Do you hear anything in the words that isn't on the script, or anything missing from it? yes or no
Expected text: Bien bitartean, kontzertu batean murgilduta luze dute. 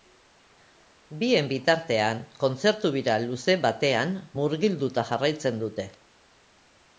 yes